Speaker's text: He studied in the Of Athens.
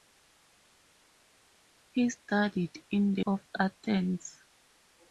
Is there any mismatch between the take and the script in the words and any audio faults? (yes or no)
no